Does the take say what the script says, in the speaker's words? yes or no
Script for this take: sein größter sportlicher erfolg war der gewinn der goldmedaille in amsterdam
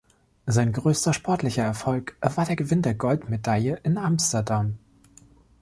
yes